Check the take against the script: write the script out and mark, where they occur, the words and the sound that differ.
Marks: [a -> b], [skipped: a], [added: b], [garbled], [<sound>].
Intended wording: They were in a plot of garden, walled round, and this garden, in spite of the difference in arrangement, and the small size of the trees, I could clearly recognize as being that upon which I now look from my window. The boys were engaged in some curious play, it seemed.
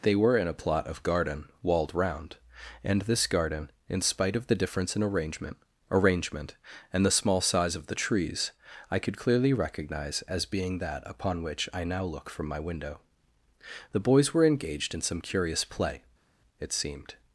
They were in a plot of garden, walled round, and this garden, in spite of the difference in arrangement, [added: arrangement] and the small size of the trees, I could clearly recognize as being that upon which I now look from my window. The boys were engaged in some curious play, it seemed.